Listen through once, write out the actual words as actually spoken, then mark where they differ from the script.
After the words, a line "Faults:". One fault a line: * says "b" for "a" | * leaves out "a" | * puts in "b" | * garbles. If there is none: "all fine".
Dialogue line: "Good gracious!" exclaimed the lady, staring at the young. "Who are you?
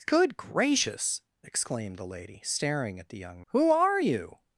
"Good gracious!" exclaimed the lady, staring at the young. "Who are you?
Faults:
all fine